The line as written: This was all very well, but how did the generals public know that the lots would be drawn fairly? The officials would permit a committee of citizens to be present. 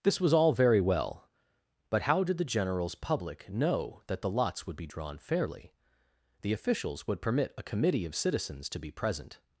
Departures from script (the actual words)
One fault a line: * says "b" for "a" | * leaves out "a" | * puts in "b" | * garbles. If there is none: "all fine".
all fine